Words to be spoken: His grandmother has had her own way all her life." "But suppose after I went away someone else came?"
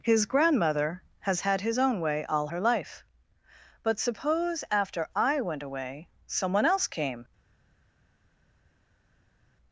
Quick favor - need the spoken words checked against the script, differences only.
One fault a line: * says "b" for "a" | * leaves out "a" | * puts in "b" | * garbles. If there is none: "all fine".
* says "his" for "her"